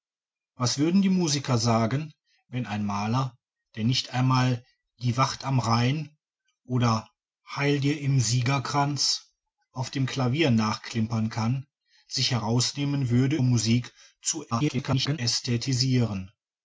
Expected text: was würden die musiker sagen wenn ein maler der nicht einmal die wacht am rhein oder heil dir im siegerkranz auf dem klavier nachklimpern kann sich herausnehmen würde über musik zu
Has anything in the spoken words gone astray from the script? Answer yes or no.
yes